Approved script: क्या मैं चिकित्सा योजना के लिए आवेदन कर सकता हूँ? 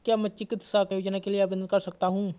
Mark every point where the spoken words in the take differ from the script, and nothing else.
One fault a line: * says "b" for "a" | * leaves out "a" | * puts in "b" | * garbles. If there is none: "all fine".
all fine